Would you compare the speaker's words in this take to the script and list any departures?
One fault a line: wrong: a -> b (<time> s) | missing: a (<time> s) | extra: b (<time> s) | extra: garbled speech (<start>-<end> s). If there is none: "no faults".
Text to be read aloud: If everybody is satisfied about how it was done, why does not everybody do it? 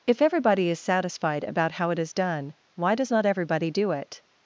wrong: was -> is (2.0 s)